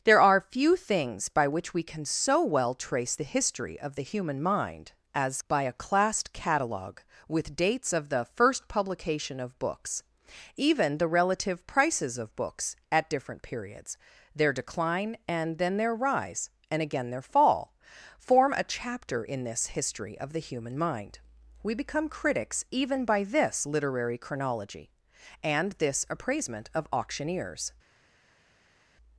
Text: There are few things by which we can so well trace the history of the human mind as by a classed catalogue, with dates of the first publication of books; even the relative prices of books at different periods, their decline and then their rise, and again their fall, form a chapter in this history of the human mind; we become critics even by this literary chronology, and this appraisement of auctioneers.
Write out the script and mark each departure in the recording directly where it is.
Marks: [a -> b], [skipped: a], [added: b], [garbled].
There are few things by which we can so well trace the history of the human mind as by a classed catalogue, with dates of the first publication of books; even the relative prices of books at different periods, their decline and then their rise, and again their fall, form a chapter in this history of the human mind; we become critics even by this literary chronology, and this appraisement of auctioneers.